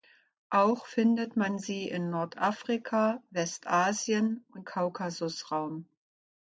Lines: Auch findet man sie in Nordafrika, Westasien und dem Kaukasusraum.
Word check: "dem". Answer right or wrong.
wrong